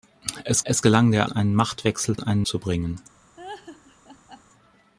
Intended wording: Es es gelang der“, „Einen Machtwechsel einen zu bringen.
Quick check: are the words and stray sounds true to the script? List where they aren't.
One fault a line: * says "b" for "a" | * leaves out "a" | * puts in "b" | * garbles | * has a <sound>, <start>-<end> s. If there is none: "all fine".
* has a laugh, 3.4-4.4 s